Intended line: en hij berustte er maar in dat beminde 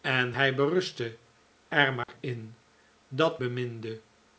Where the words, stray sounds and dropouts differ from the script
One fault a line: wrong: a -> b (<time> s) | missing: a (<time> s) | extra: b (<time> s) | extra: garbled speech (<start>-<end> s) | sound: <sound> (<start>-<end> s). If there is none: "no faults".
sound: dropout (2.0-2.1 s)